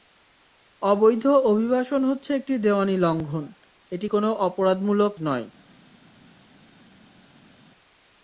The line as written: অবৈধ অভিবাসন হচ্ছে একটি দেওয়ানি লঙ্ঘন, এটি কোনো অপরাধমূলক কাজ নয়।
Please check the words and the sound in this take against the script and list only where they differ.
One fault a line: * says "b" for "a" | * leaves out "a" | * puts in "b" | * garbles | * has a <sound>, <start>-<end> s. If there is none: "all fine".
* leaves out "কাজ"